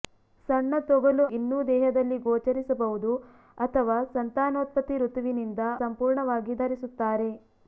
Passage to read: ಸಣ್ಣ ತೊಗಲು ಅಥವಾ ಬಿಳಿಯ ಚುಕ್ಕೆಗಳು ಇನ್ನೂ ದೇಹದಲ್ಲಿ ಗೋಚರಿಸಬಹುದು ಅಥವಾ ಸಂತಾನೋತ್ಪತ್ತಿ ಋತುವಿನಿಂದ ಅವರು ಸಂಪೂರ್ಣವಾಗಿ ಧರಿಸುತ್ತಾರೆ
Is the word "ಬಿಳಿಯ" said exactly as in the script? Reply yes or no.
no